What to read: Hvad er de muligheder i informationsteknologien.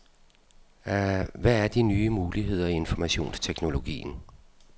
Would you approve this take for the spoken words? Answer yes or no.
no